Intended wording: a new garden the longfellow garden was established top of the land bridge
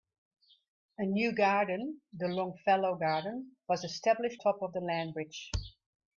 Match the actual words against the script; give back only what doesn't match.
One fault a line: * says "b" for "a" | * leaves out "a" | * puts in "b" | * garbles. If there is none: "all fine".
all fine